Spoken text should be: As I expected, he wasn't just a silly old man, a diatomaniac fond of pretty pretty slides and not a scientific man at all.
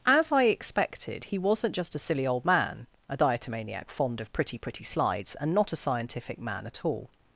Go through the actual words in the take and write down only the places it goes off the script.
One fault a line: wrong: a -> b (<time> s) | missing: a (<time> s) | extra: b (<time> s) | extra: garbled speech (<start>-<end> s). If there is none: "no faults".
no faults